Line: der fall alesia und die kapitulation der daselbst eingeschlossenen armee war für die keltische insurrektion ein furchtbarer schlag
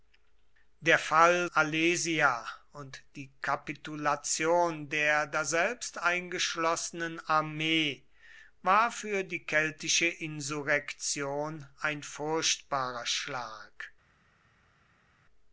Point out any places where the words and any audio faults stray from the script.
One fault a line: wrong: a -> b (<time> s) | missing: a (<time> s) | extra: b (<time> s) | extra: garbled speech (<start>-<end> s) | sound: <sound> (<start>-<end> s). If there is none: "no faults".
no faults